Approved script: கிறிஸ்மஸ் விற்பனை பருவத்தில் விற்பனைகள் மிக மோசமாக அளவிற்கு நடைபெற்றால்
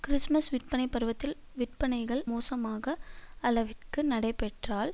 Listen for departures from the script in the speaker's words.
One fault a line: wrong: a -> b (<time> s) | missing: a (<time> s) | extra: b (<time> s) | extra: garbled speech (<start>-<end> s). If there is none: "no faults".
missing: மிக (2.2 s)